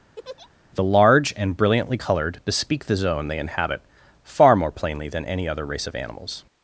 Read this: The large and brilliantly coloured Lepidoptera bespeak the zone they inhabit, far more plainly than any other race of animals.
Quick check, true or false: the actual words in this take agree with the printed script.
false